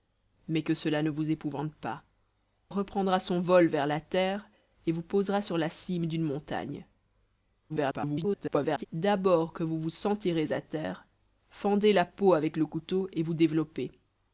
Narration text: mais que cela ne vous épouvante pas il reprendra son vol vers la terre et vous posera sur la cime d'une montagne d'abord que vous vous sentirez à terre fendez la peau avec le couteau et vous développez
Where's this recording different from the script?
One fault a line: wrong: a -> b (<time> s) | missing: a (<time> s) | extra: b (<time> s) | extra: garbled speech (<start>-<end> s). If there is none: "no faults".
missing: il (2.0 s)
extra: garbled speech (7.7-8.9 s)